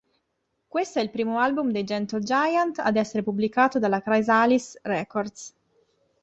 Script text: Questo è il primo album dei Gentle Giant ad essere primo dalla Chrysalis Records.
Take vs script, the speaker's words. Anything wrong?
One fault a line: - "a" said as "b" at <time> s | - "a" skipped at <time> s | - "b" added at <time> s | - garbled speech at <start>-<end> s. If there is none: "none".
- "primo" said as "pubblicato" at 3.2 s